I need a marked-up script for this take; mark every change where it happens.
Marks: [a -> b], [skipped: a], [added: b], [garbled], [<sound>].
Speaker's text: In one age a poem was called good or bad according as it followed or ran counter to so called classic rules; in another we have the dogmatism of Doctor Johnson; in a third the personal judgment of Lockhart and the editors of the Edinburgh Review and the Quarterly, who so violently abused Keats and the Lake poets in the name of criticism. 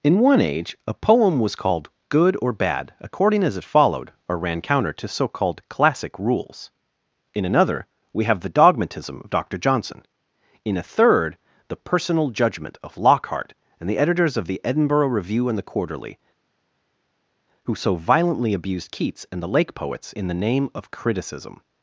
In one age a poem was called good or bad according as it followed or ran counter to so called classic rules; in another we have the dogmatism of Doctor Johnson; in a third the personal judgment of Lockhart and the editors of the Edinburgh Review and the Quarterly, who so violently abused Keats and the Lake poets in the name of criticism.